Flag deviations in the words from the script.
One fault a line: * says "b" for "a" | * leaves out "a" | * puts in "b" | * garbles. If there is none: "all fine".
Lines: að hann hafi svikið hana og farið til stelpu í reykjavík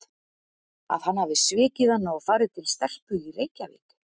all fine